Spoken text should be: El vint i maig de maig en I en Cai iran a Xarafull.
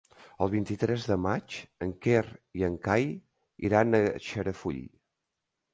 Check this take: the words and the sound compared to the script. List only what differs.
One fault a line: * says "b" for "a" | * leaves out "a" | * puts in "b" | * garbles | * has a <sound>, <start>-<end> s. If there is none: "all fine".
* says "tres" for "maig"
* puts in "Quer"